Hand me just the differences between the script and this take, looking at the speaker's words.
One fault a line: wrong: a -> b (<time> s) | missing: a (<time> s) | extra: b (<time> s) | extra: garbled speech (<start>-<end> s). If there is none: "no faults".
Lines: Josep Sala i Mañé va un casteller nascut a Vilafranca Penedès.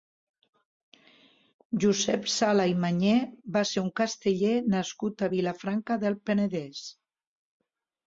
extra: ser (3.8 s)
extra: del (6.1 s)